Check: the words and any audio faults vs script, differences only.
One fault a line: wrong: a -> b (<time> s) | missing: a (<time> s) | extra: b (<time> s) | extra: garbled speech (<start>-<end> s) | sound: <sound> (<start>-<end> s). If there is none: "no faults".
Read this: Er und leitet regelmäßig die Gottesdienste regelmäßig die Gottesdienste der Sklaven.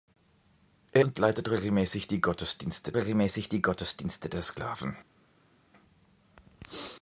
no faults